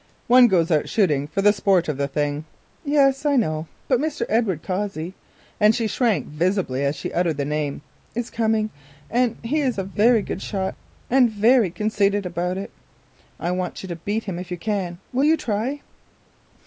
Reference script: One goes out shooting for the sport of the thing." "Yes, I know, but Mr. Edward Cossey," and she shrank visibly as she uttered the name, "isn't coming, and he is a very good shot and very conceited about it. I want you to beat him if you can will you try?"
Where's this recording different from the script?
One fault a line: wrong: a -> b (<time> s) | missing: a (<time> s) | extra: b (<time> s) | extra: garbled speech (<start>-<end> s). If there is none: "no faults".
wrong: isn't -> is (8.2 s)